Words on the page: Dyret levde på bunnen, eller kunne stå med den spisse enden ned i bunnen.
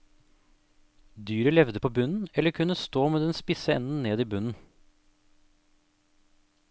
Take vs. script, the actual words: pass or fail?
pass